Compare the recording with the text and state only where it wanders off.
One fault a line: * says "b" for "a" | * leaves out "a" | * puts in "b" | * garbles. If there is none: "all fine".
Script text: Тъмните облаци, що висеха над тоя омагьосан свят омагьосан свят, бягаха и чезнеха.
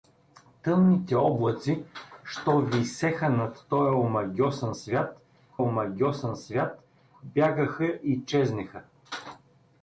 all fine